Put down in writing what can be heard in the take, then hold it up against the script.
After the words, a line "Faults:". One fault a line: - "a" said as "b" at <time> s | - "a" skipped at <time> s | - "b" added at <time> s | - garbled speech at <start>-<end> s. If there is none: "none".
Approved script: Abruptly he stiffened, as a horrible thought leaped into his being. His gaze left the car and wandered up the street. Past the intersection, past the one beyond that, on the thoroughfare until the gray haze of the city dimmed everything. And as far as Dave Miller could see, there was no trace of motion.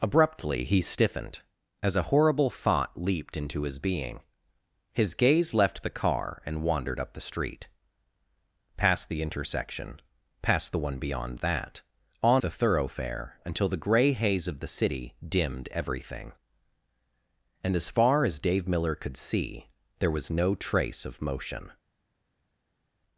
Abruptly he stiffened, as a horrible thought leaped into his being. His gaze left the car and wandered up the street. Past the intersection, past the one beyond that, on the thoroughfare until the gray haze of the city dimmed everything. And as far as Dave Miller could see, there was no trace of motion.
Faults:
none